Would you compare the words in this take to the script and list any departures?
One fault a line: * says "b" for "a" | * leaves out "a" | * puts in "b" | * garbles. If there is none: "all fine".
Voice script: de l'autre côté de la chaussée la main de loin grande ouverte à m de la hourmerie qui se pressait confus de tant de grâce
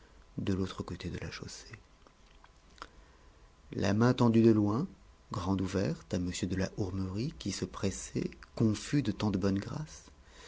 * puts in "tendue"
* puts in "bonne"